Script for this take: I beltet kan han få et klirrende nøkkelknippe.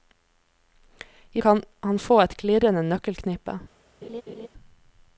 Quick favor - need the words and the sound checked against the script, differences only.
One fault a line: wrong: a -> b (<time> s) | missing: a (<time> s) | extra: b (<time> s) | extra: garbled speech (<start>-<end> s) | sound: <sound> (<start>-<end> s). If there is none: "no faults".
missing: beltet (1.4 s)
sound: laugh (4.0-4.5 s)